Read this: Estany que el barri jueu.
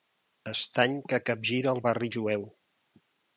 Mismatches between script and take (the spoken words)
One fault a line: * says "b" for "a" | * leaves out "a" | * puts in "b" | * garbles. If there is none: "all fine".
* puts in "capgira"